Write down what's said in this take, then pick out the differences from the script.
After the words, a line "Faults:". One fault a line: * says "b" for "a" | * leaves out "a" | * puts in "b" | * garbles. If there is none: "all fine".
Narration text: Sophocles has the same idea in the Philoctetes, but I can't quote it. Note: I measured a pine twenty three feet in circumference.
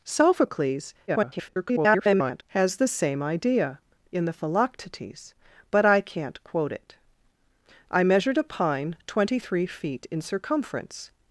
Sophocles [garbled] has the same idea in the Philoctetes, but I can't quote it: I measured a pine twenty three feet in circumference.
Faults:
* garbles
* leaves out "Note"